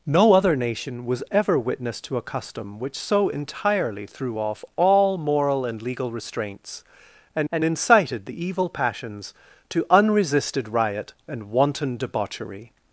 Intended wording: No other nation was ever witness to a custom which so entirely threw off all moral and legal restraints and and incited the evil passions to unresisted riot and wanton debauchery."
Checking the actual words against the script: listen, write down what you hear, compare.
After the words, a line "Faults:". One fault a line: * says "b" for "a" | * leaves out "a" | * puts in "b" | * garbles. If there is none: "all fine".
No other nation was ever witness to a custom which so entirely threw off all moral and legal restraints and and incited the evil passions to unresisted riot and wanton debauchery."
Faults:
all fine